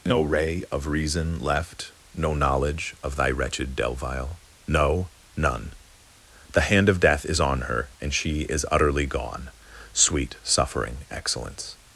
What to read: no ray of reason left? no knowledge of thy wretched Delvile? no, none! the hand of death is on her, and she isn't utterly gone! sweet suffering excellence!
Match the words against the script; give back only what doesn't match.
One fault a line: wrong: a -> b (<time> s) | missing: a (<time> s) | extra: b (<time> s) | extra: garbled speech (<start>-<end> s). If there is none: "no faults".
wrong: isn't -> is (8.4 s)